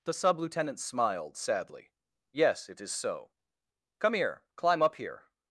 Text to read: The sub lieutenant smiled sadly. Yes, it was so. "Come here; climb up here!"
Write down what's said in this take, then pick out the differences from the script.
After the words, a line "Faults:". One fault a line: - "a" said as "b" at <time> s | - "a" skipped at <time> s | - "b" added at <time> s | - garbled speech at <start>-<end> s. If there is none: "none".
The sub lieutenant smiled sadly. Yes, it is so. "Come here; climb up here!"
Faults:
- "was" said as "is" at 2.8 s